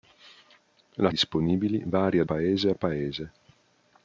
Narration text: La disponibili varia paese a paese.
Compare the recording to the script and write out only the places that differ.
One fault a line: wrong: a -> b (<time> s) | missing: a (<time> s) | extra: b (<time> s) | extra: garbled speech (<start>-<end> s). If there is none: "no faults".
no faults